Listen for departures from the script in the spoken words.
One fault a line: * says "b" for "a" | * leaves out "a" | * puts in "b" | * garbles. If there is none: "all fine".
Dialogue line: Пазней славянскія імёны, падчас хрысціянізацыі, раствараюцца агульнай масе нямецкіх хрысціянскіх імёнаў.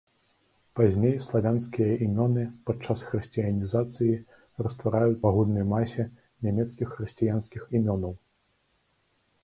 all fine